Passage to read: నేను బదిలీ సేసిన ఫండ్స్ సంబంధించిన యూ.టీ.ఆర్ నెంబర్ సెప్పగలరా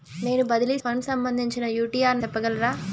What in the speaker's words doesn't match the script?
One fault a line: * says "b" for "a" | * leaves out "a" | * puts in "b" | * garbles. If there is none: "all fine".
* leaves out "సేసిన"
* leaves out "నెంబర్"